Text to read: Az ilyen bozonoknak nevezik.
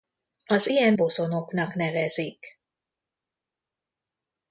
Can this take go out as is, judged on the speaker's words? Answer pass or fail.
pass